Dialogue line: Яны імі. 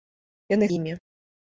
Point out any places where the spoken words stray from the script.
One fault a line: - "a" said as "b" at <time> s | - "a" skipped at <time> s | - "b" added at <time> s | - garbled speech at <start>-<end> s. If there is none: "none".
none